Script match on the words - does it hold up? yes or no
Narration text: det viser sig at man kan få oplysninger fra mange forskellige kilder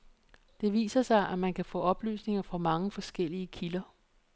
yes